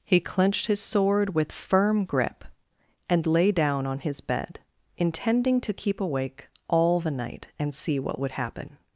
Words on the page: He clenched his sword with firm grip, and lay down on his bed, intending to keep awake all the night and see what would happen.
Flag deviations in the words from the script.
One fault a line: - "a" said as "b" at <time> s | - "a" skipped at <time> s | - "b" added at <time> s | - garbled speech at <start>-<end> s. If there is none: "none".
none